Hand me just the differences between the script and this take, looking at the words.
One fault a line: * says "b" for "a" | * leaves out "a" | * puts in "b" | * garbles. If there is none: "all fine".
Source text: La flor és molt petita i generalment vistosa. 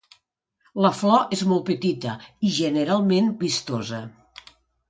all fine